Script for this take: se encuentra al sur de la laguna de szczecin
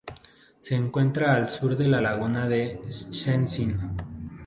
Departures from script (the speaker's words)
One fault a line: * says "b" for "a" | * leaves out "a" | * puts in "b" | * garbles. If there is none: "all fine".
all fine